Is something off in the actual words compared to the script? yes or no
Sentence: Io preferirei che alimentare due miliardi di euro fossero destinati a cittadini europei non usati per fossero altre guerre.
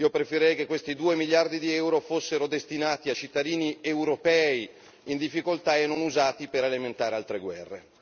yes